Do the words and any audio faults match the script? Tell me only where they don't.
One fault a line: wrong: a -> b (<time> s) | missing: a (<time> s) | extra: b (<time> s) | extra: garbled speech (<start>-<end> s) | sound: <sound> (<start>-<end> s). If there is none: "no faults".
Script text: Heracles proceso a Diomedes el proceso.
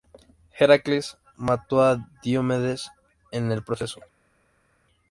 wrong: proceso -> mató (1.4 s)
extra: en (3.3 s)